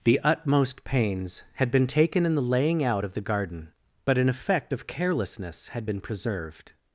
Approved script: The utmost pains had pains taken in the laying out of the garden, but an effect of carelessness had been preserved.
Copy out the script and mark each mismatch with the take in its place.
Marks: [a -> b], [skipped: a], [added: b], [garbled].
The utmost pains had [pains -> been] taken in the laying out of the garden, but an effect of carelessness had been preserved.